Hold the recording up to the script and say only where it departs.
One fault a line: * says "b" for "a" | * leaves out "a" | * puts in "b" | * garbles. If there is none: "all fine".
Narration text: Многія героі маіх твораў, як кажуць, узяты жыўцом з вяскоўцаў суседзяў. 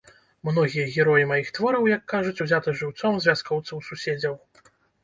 all fine